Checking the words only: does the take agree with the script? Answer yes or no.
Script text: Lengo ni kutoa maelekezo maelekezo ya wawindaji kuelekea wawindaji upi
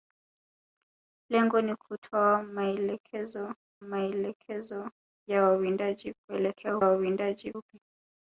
yes